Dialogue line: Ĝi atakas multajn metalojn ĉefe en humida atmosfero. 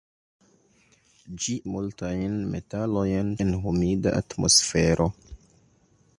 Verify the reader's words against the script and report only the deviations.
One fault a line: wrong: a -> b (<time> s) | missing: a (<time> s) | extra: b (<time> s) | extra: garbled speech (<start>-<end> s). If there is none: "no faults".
missing: atakas (1.6 s)
missing: ĉefe (3.3 s)